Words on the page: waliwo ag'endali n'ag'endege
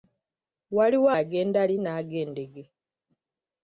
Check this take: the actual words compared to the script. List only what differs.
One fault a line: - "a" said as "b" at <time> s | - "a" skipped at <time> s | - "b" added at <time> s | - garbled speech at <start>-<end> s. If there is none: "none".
none